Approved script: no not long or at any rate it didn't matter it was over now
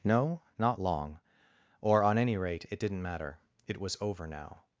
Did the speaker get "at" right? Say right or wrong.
wrong